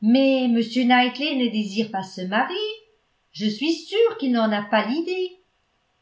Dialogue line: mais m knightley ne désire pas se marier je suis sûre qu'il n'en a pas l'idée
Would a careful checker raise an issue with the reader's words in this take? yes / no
no